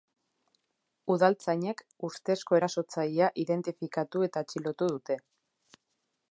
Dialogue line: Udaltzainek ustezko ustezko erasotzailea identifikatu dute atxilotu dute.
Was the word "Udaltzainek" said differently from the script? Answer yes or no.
no